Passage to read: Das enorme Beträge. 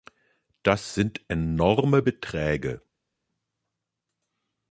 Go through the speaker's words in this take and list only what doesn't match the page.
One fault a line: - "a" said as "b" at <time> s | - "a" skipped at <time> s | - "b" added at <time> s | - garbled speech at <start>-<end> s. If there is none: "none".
- "sind" added at 0.9 s